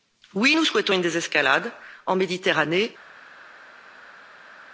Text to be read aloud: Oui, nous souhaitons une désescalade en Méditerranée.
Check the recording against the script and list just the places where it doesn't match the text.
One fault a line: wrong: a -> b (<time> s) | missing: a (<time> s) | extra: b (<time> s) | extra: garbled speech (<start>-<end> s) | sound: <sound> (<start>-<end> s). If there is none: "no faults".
no faults